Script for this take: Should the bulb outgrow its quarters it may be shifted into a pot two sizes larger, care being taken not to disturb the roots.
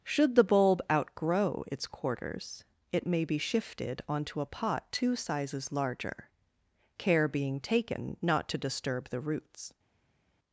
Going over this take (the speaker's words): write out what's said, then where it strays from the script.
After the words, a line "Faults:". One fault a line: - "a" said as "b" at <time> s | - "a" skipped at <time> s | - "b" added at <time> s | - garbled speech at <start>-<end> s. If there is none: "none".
Should the bulb outgrow its quarters it may be shifted onto a pot two sizes larger, care being taken not to disturb the roots.
Faults:
- "into" said as "onto" at 4.1 s